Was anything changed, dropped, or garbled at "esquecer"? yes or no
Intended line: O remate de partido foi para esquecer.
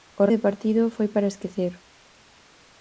no